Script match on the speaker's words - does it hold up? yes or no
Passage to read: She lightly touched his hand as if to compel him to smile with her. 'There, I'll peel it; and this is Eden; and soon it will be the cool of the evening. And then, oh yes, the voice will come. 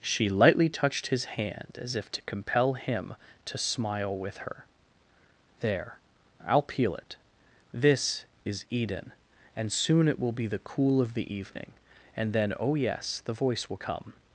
no